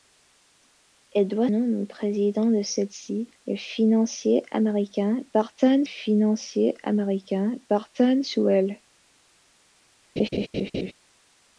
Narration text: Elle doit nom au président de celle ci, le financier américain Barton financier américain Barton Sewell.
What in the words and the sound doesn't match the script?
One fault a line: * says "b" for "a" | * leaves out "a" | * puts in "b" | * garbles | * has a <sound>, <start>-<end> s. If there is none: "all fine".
* has a laugh, 10.2-10.9 s